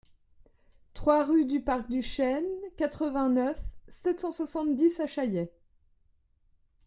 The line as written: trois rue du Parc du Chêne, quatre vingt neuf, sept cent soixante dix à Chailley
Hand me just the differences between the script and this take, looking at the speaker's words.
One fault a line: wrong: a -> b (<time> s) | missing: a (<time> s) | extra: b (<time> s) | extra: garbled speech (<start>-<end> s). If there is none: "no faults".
no faults